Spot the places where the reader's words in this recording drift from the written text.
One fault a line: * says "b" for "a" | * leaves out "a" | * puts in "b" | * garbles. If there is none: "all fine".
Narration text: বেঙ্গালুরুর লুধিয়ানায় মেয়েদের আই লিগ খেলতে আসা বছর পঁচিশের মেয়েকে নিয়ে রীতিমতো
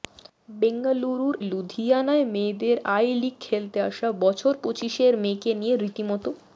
all fine